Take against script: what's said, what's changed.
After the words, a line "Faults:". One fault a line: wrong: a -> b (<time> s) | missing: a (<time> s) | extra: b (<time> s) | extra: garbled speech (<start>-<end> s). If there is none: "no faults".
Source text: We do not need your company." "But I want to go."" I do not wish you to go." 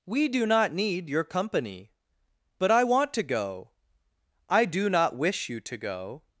We do not need your company." "But I want to go."" I do not wish you to go."
Faults:
no faults